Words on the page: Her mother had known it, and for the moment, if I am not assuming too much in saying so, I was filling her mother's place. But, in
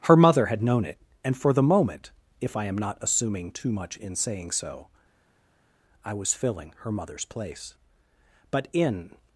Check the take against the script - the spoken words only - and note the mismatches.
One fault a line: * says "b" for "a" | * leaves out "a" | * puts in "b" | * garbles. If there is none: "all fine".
all fine